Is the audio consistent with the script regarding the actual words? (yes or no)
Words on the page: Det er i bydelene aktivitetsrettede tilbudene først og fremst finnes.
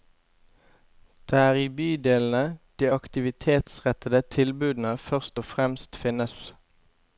no